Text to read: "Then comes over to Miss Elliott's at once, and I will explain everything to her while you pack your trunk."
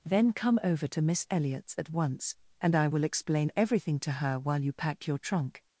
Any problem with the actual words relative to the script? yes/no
yes